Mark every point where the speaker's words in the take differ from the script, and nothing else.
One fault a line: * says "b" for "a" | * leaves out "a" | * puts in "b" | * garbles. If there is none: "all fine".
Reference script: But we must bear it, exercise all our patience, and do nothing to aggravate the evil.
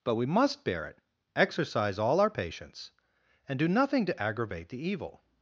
all fine